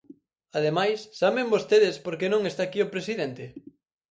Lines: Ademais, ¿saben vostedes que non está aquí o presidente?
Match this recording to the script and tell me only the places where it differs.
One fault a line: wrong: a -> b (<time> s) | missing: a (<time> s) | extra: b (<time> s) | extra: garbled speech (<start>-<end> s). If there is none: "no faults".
extra: por (2.0 s)